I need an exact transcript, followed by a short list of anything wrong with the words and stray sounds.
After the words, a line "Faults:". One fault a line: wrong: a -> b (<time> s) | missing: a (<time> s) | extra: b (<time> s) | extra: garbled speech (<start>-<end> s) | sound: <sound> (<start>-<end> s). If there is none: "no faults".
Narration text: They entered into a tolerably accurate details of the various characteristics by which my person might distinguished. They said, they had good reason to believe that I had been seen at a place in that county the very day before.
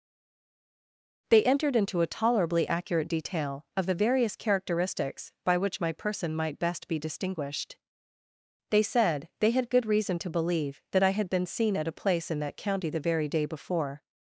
They entered into a tolerably accurate detail of the various characteristics by which my person might best be distinguished. They said, they had good reason to believe that I had been seen at a place in that county the very day before.
Faults:
wrong: details -> detail (3.1 s)
extra: best be (6.6 s)